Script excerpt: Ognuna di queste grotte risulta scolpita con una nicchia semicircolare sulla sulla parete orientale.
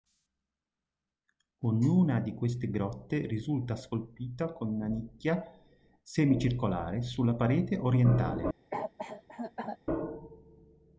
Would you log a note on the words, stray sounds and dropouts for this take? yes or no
yes